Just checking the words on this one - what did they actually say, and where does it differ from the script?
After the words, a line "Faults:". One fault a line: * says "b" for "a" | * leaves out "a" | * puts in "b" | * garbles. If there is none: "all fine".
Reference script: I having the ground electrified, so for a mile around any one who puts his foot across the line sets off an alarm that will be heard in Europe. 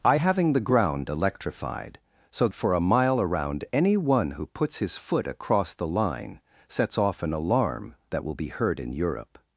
I having the ground electrified, so for a mile around any one who puts his foot across the line sets off an alarm that will be heard in Europe.
Faults:
all fine